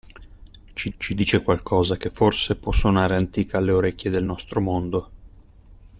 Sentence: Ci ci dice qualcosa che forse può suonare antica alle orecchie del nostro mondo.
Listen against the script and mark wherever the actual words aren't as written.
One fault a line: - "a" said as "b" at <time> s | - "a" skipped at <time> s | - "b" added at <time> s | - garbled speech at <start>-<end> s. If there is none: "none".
none